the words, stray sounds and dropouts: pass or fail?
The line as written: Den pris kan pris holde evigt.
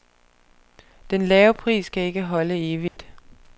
fail